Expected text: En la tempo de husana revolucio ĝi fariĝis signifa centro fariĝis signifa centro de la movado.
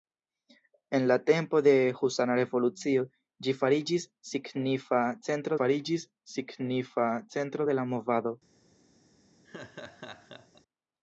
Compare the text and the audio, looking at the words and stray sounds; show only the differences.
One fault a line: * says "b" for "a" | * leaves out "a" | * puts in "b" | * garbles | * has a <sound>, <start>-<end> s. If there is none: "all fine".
* has a laugh, 9.4-10.6 s